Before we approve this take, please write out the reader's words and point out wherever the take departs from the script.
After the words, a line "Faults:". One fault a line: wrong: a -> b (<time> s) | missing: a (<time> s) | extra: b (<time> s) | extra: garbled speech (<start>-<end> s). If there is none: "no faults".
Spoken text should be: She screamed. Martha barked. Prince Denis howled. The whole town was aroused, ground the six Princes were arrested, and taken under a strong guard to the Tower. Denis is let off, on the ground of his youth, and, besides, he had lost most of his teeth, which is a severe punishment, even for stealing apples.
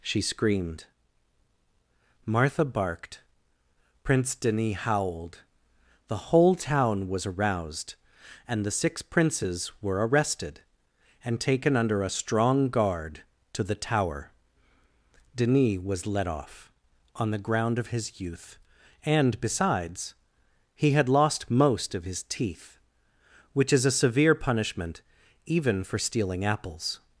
She screamed. Martha barked. Prince Denis howled. The whole town was aroused, and the six Princes were arrested, and taken under a strong guard to the Tower. Denis was let off, on the ground of his youth, and, besides, he had lost most of his teeth, which is a severe punishment, even for stealing apples.
Faults:
wrong: ground -> and (8.5 s)
wrong: is -> was (15.8 s)